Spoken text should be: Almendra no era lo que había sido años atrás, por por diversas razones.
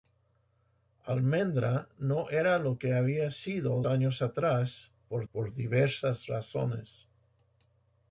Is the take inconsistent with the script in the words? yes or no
no